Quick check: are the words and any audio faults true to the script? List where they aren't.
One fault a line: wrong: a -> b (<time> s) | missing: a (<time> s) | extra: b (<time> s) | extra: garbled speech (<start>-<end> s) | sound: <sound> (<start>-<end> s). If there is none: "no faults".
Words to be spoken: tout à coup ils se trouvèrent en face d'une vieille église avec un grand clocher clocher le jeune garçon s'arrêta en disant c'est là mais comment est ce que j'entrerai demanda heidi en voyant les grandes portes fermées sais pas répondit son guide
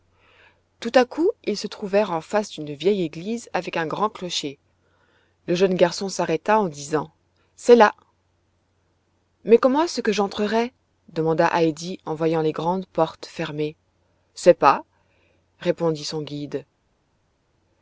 missing: clocher (4.6 s)